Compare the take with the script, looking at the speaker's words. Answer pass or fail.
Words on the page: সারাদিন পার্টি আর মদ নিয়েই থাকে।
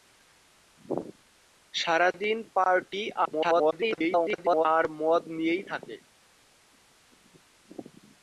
fail